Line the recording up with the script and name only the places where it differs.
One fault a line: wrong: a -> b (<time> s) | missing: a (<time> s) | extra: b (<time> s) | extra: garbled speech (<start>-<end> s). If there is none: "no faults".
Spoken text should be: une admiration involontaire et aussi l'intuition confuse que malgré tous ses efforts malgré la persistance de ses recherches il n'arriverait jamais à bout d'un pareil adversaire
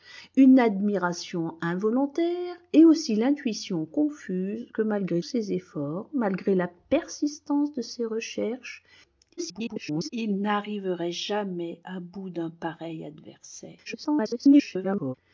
missing: tous (5.2 s)
extra: garbled speech (9.4-10.1 s)
extra: garbled speech (13.8-15.1 s)